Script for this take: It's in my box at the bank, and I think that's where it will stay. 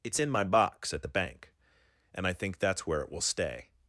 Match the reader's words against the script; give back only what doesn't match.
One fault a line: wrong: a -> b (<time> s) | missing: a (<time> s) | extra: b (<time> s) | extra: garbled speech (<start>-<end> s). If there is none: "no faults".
no faults